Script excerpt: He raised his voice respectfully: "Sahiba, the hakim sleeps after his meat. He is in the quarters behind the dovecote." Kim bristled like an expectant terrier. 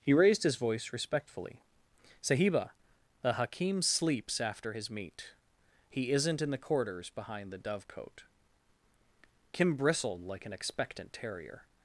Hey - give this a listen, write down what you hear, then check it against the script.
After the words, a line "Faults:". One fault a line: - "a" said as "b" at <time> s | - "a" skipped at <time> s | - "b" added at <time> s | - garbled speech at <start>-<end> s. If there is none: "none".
He raised his voice respectfully: "Sahiba, the hakim sleeps after his meat. He isn't in the quarters behind the dovecote." Kim bristled like an expectant terrier.
Faults:
- "is" said as "isn't" at 6.1 s